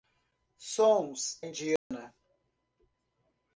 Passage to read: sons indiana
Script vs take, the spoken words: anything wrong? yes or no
no